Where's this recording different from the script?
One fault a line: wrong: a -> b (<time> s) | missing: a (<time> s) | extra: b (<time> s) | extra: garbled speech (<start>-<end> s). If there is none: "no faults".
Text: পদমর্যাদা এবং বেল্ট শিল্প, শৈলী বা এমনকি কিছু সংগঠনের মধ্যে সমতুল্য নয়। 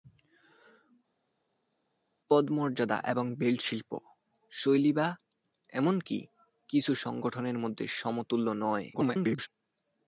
extra: garbled speech (8.9-9.5 s)